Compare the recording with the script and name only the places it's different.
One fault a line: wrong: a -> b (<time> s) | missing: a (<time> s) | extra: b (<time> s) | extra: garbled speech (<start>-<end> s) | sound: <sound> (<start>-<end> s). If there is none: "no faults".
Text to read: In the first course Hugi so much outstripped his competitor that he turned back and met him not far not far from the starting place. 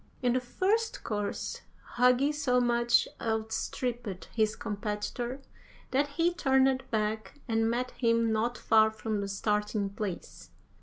missing: not far (8.9 s)